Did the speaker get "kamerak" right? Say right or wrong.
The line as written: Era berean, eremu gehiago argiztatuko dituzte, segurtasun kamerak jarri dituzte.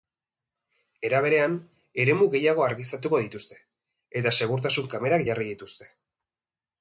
right